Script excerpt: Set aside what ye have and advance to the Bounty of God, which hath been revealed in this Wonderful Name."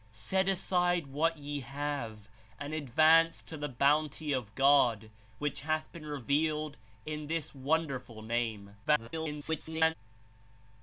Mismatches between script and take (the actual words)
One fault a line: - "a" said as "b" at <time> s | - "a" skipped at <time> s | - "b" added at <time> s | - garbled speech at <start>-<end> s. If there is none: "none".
- garbled speech at 8.8-9.9 s